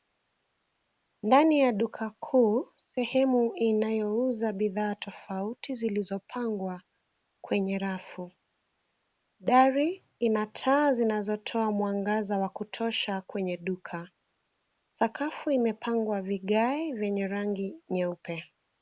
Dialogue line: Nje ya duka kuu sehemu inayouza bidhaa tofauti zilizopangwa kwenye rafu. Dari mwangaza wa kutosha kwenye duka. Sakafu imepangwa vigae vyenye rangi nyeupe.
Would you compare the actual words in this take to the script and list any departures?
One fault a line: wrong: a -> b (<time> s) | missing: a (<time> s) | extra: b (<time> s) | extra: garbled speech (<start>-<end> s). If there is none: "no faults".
wrong: Nje -> Ndani (1.2 s)
extra: ina taa zinazotoa (10.2 s)